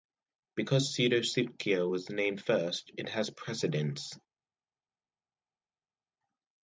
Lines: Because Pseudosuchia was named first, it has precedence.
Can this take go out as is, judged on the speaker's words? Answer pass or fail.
pass